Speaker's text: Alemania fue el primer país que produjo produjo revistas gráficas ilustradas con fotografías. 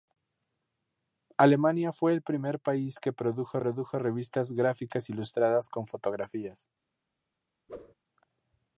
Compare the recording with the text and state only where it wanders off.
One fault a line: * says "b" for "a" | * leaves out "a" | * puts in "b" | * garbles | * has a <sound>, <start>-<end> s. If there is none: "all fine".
* has a whoosh, 7.7-7.9 s